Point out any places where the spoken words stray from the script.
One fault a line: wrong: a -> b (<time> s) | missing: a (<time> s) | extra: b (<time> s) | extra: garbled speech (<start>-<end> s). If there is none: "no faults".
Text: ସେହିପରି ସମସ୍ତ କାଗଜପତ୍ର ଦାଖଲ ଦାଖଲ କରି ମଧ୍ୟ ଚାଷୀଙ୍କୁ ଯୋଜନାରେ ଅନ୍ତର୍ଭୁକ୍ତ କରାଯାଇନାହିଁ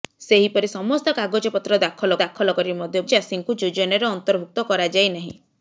no faults